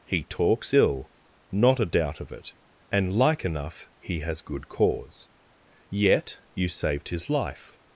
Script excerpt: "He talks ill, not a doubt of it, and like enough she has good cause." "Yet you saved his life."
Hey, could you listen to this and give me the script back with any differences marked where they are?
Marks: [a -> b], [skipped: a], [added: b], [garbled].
"He talks ill, not a doubt of it, and like enough [she -> he] has good cause." "Yet you saved his life."